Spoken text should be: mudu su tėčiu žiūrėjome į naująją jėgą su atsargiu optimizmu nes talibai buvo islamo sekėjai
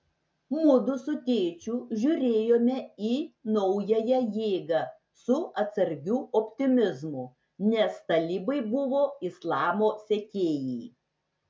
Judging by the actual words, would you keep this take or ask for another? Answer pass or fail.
pass